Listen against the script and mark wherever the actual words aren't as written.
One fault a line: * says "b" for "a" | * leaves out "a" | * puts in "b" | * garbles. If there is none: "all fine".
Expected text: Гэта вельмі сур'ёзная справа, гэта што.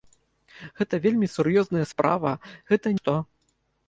all fine